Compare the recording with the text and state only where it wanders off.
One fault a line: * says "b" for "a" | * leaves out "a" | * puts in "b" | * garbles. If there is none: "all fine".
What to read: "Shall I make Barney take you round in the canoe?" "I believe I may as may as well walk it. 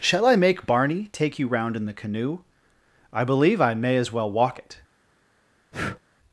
* leaves out "may as"